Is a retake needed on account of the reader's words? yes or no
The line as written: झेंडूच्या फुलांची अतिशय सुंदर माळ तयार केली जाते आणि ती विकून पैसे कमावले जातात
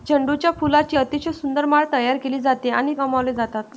yes